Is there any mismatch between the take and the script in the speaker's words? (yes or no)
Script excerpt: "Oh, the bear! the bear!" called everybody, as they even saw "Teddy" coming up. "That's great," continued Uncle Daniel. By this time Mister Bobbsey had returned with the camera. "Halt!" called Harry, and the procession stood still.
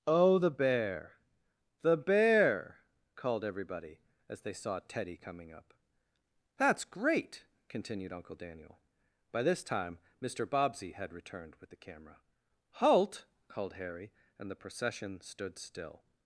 yes